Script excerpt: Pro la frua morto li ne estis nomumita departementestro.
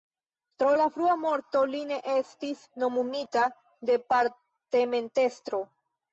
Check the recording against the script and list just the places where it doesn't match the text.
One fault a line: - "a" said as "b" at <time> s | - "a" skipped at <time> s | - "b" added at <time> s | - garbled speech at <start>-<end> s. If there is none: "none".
none